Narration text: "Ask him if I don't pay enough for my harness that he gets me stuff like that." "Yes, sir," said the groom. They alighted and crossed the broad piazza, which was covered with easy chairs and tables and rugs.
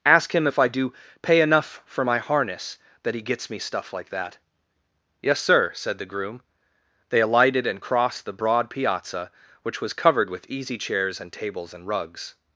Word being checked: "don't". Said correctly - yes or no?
no